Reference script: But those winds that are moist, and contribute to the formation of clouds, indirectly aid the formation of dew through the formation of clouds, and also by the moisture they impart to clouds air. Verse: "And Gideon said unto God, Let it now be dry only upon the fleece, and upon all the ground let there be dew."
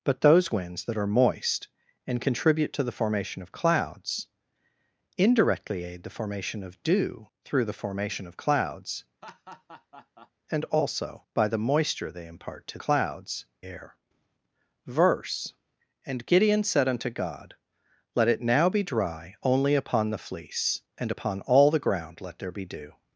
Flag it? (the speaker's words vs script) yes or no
no